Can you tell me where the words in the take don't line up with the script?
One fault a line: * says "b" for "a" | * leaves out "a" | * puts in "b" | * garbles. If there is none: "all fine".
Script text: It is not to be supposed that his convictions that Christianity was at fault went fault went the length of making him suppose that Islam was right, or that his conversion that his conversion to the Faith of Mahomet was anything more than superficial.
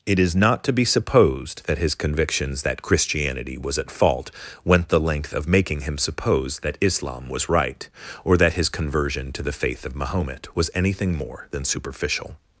* leaves out "fault went"
* leaves out "that his conversion"